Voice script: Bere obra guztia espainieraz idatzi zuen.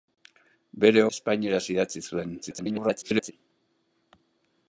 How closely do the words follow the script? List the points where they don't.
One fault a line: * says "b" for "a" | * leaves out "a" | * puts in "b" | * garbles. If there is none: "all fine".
* leaves out "obra guztia"
* garbles